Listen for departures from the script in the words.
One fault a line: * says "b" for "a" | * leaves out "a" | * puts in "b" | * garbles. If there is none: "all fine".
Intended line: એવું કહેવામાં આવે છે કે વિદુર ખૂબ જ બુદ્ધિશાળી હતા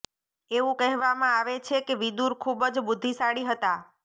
all fine